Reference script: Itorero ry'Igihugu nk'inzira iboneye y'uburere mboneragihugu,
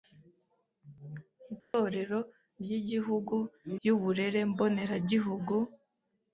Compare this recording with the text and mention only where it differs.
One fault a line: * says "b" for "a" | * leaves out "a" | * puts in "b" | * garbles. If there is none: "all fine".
* leaves out "nk'inzira iboneye"